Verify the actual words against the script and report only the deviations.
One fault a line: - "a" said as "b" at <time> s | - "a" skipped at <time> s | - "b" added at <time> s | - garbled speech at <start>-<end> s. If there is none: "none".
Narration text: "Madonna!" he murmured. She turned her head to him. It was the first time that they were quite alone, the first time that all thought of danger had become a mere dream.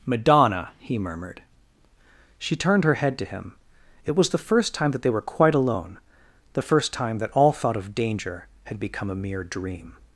none